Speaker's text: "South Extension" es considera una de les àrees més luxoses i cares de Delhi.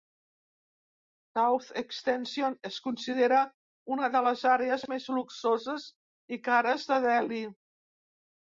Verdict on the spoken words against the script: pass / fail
pass